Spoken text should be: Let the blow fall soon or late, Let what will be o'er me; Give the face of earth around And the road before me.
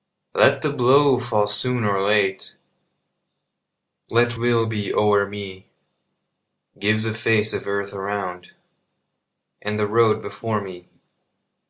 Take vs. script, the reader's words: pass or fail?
fail